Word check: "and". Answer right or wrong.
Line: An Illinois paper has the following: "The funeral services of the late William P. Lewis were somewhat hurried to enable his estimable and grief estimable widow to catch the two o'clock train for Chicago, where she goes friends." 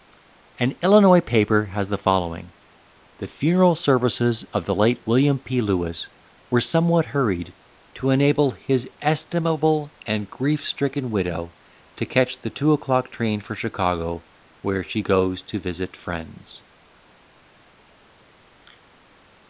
right